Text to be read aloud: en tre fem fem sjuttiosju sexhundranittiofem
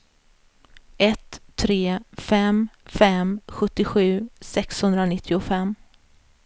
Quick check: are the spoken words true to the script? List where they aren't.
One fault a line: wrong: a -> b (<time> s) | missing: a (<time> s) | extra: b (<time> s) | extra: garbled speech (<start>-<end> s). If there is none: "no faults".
wrong: en -> ett (1.0 s)